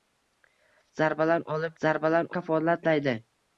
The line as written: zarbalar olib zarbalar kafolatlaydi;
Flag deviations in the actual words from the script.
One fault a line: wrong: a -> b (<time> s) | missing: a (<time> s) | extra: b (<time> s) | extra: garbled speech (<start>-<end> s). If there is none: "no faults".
no faults